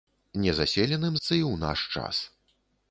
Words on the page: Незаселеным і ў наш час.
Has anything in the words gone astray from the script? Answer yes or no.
no